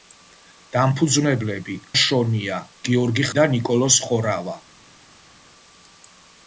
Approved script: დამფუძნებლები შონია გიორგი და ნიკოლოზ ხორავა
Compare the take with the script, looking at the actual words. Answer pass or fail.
pass